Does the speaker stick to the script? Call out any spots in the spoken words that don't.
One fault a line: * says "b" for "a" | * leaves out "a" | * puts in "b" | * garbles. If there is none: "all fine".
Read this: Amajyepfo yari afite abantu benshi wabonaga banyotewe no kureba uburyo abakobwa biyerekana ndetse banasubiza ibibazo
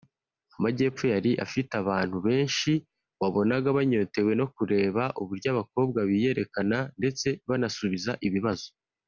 all fine